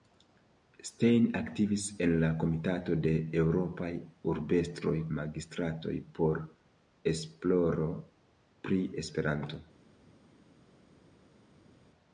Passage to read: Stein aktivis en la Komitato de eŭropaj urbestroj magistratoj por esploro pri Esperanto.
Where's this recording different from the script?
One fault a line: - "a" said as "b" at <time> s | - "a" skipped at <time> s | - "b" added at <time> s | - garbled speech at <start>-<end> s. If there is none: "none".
none